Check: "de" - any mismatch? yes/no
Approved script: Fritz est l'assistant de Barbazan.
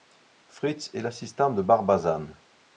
no